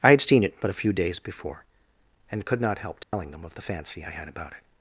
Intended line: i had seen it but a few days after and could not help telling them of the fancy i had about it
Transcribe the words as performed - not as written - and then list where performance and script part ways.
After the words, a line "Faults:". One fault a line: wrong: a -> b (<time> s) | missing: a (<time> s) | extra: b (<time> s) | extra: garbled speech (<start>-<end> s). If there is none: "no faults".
i had seen it but a few days before and could not help telling them of the fancy i had about it
Faults:
wrong: after -> before (1.2 s)